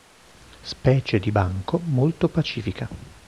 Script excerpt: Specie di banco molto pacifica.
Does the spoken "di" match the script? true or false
true